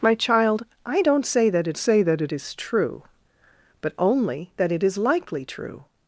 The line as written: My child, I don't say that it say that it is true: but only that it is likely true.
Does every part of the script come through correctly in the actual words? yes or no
yes